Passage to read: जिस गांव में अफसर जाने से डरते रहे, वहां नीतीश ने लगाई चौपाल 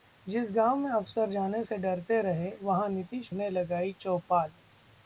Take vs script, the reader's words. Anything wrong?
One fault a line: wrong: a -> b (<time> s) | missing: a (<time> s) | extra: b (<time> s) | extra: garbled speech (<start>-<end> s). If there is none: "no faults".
no faults